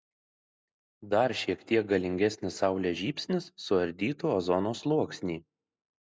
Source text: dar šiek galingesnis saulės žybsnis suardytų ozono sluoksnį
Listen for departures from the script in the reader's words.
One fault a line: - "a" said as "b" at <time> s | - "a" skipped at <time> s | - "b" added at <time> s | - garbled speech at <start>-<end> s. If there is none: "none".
- "tiek" added at 1.7 s